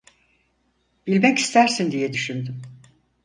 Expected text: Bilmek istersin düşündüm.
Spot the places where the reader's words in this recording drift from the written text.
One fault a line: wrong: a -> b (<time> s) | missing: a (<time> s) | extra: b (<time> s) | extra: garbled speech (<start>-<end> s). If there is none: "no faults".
extra: diye (1.9 s)